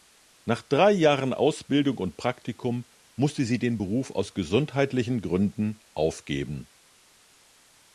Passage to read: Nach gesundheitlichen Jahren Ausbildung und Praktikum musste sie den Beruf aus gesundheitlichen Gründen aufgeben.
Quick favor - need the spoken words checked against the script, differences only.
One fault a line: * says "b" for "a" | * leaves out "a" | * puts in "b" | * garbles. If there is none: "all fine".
* says "drei" for "gesundheitlichen"